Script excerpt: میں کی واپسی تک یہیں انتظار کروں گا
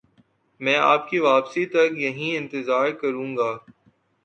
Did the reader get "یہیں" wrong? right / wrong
right